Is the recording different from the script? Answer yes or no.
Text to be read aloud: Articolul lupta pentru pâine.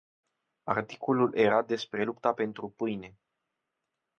yes